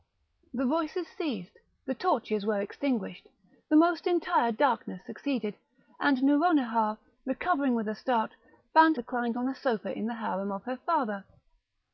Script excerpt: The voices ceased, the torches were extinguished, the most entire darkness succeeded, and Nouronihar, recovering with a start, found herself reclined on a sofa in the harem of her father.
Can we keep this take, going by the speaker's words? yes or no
no